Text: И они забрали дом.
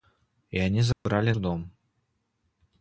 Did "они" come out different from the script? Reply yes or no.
no